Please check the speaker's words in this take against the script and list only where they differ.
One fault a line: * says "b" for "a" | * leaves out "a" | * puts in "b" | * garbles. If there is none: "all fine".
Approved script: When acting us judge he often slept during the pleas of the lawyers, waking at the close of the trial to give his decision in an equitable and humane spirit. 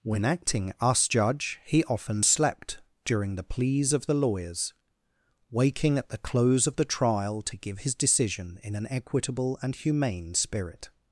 all fine